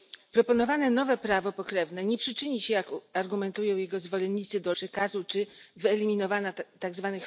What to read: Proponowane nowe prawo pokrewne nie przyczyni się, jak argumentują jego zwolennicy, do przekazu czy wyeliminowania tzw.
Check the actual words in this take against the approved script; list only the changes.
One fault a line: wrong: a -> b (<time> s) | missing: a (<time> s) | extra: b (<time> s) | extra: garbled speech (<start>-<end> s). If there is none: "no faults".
no faults